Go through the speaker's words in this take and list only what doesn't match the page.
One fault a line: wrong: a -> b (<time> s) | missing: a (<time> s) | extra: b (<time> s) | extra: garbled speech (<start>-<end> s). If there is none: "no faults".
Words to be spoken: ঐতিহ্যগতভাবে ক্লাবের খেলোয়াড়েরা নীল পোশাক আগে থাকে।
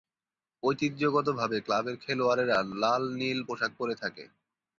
extra: লাল (2.8 s)
wrong: আগে -> পরে (3.8 s)